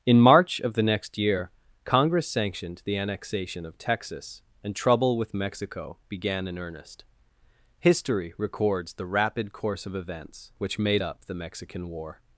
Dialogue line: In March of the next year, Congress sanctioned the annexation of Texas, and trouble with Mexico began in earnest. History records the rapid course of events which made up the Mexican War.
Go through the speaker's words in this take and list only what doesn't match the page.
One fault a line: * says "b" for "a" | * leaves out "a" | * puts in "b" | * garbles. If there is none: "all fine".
all fine